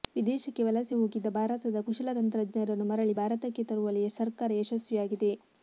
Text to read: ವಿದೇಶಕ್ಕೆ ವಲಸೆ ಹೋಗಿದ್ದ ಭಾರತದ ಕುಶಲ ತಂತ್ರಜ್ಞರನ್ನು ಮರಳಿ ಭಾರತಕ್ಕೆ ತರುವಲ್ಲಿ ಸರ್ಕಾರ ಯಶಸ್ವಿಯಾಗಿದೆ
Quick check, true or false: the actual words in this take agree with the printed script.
true